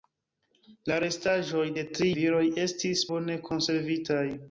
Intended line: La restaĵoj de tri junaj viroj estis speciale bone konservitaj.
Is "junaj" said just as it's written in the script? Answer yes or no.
no